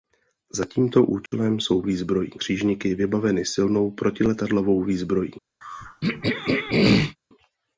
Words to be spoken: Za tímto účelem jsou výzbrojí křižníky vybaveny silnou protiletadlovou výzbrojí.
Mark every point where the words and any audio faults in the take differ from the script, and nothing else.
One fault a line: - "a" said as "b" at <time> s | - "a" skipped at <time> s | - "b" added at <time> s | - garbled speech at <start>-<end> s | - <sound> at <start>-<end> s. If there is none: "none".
- dropout at 1.3-1.3 s
- throat clearing at 5.6-7.2 s